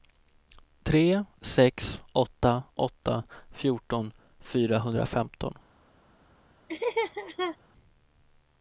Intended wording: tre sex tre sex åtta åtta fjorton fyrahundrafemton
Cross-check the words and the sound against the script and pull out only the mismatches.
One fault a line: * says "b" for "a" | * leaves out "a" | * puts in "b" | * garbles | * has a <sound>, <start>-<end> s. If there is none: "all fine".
* leaves out "tre sex"
* has a laugh, 6.7-7.6 s